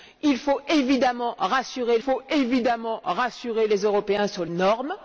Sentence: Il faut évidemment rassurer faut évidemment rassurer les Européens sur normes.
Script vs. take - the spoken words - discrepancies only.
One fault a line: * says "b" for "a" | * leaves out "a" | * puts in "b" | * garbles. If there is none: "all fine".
all fine